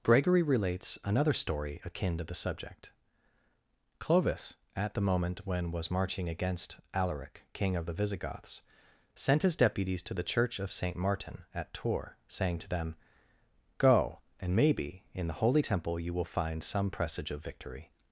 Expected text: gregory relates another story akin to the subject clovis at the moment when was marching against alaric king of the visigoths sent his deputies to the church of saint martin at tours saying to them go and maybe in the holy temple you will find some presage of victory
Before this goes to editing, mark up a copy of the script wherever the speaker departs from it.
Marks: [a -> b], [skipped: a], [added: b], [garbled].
gregory relates another story akin to the subject clovis at the moment when was marching against alaric king of the visigoths sent his deputies to the church of saint martin at tours saying to them go and maybe in the holy temple you will find some presage of victory